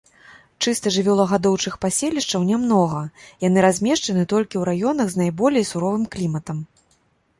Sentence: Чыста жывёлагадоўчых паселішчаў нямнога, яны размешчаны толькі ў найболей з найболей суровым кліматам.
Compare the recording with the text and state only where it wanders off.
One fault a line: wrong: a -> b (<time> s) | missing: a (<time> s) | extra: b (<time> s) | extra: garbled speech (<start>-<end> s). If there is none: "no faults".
wrong: найболей -> раёнах (4.7 s)